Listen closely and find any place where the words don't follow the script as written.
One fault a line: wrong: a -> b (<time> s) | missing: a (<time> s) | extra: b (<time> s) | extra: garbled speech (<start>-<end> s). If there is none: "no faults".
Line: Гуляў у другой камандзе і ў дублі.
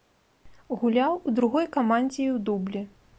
no faults